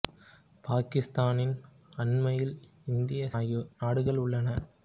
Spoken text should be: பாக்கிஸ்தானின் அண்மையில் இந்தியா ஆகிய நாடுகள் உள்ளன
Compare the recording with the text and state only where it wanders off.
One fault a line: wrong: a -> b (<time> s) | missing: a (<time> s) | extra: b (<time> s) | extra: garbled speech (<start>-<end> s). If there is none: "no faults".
no faults